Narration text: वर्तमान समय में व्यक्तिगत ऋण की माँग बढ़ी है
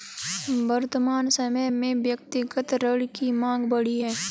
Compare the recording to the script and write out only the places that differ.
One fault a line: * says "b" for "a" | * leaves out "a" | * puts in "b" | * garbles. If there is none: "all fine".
all fine